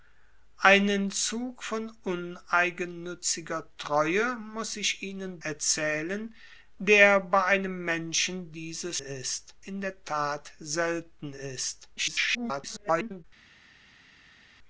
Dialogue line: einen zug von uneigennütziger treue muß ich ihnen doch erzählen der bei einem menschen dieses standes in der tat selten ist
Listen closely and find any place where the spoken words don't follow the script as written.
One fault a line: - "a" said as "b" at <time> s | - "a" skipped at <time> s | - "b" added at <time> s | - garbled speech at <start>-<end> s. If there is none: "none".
- "doch" skipped at 5.4 s
- "standes" said as "ist" at 9.0 s
- garbled speech at 12.0-13.2 s